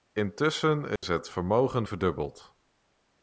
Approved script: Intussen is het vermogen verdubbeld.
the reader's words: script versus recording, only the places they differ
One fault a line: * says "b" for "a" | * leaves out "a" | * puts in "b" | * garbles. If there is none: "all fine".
all fine